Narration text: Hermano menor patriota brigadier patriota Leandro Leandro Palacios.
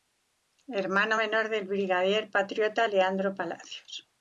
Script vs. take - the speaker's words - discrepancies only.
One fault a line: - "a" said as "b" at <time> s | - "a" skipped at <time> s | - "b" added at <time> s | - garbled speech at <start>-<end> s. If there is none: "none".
- "patriota" said as "del" at 1.5 s
- "Leandro" skipped at 3.3 s